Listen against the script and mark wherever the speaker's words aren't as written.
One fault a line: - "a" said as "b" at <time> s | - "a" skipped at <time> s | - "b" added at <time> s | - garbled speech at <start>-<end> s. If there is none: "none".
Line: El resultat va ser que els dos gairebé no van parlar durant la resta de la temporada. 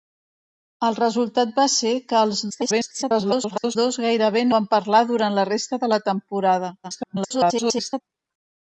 - garbled speech at 2.5-3.8 s
- "no" skipped at 4.5 s
- garbled speech at 6.8-8.0 s